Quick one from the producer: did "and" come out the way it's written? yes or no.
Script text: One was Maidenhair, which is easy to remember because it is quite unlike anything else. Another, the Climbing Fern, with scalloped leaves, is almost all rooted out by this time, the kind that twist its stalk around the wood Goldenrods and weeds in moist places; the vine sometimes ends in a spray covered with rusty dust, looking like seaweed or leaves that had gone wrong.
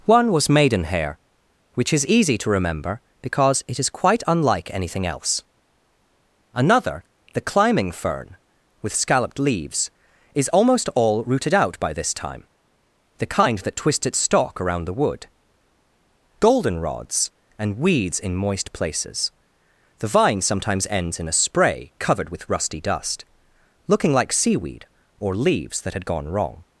yes